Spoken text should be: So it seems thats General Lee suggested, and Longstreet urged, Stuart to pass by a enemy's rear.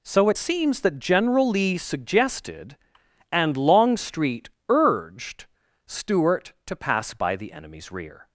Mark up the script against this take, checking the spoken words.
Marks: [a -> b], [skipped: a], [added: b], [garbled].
So it seems [thats -> that] General Lee suggested, and Longstreet urged, Stuart to pass by [a -> the] enemy's rear.